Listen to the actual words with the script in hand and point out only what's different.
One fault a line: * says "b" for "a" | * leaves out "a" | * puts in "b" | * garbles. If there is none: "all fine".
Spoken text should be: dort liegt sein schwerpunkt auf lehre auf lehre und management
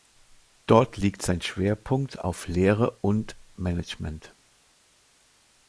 * leaves out "auf lehre"